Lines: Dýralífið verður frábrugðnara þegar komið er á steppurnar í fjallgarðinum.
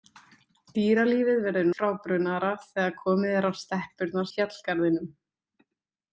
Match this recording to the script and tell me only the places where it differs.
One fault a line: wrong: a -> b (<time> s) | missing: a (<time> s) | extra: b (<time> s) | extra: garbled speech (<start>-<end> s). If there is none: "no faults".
no faults